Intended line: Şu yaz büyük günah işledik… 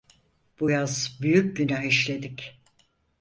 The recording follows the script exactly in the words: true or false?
false